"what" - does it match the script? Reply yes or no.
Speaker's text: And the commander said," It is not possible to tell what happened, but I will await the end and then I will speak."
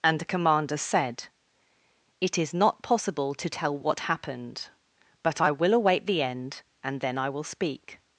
yes